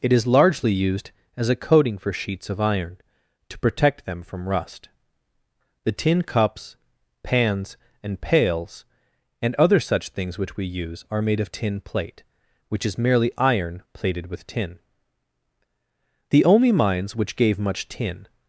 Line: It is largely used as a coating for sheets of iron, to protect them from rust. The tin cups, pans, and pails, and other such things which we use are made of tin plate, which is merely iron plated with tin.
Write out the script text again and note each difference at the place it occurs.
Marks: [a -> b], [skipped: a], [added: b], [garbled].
It is largely used as a coating for sheets of iron, to protect them from rust. The tin cups, pans, and pails, and other such things which we use are made of tin plate, which is merely iron plated with tin. [added: The only mines which gave much tin]